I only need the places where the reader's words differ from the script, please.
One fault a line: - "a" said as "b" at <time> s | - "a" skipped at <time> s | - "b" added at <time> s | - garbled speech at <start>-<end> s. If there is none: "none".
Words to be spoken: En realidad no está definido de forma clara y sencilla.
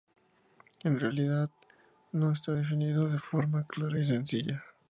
none